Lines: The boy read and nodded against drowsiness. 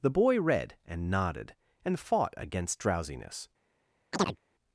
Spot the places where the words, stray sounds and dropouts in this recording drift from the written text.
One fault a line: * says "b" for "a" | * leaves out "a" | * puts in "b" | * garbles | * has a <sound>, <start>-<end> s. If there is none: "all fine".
* puts in "and fought"
* has a chirp, 4.1-4.4 s